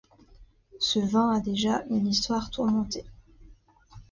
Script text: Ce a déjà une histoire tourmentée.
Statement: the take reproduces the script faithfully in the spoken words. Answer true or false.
false